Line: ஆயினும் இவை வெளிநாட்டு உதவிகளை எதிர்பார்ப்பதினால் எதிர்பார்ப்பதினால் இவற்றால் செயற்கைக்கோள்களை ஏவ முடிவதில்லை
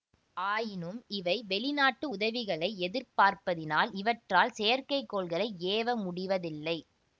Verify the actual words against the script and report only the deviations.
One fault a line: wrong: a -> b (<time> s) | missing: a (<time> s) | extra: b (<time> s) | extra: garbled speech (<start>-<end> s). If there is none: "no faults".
missing: எதிர்பார்ப்பதினால் (3.9 s)